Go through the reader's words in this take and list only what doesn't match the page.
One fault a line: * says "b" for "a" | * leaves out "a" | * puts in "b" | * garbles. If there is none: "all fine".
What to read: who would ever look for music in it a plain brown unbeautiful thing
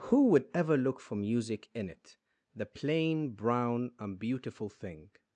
* says "the" for "a"